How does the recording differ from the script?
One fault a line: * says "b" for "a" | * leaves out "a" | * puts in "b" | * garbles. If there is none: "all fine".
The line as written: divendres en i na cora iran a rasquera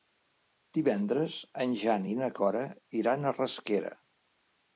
* puts in "jan"